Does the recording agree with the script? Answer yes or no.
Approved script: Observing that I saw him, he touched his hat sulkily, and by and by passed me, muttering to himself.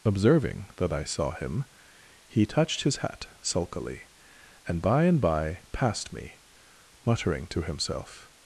yes